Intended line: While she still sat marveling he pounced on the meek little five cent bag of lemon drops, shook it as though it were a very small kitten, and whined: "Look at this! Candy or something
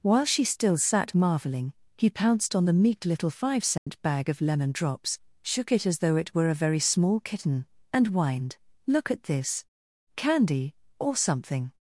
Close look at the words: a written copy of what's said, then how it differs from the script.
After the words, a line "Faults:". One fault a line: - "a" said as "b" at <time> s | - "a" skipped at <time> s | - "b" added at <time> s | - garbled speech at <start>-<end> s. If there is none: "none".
While she still sat marveling he pounced on the meek little five cent bag of lemon drops, shook it as though it were a very small kitten, and whined: "Look at this! Candy or something
Faults:
none